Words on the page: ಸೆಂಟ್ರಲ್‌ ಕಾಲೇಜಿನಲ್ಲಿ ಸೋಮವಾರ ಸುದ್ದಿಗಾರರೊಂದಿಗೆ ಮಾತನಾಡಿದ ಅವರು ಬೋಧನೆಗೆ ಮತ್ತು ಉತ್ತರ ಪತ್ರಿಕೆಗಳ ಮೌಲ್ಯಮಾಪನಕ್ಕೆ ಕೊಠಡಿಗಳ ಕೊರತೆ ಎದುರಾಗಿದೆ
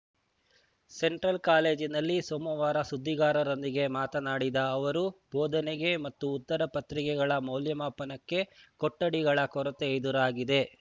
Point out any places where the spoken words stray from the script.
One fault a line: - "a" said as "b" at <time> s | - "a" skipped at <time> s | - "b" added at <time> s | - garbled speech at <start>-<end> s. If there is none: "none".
none